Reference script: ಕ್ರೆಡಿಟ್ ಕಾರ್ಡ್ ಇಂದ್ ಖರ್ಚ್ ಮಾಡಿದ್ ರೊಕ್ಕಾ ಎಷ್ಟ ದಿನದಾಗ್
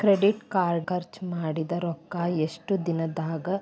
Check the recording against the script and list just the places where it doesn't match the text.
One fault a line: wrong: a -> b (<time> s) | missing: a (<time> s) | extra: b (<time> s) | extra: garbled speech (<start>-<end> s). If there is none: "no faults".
missing: ಇಂದ್ (0.9 s)